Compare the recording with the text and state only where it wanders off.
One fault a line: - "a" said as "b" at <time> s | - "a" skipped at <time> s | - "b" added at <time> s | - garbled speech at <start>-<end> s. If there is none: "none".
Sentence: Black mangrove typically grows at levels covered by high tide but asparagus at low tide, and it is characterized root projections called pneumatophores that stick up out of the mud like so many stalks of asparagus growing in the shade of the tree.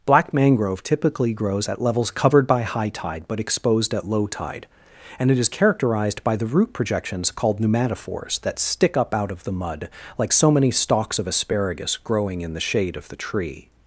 - "asparagus" said as "exposed" at 3.4 s
- "by the" added at 6.2 s